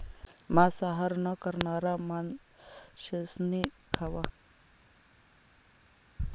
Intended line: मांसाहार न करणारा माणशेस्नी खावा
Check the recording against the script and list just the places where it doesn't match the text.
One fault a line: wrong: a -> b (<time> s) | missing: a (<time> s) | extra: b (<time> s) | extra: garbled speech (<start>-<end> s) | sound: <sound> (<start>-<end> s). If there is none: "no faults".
no faults